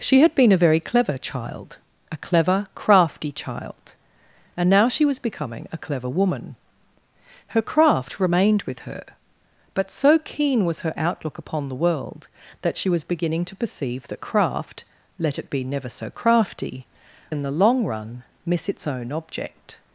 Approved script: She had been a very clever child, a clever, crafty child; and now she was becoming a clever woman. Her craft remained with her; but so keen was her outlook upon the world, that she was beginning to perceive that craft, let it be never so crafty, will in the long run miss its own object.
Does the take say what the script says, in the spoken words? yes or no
no